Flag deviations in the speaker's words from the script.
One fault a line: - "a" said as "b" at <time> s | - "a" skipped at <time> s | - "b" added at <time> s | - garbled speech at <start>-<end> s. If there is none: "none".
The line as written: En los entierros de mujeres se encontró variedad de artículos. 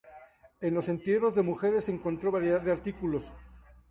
none